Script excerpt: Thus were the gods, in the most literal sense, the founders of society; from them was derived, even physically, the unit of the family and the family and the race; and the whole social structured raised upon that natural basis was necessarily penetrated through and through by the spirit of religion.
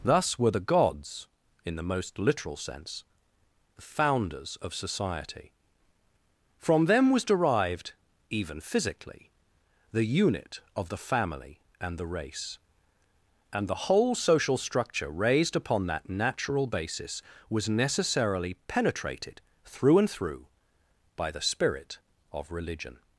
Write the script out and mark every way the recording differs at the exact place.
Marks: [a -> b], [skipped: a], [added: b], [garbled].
Thus were the gods, in the most literal sense, the founders of society; from them was derived, even physically, the unit of the family and the [skipped: family and the] race; and the whole social [structured -> structure] raised upon that natural basis was necessarily penetrated through and through by the spirit of religion.